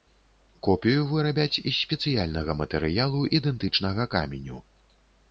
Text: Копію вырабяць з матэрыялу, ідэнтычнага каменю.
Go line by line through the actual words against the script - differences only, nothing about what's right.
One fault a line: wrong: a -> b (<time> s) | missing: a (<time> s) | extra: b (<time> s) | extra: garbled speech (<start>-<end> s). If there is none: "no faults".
extra: спецыяльнага (1.8 s)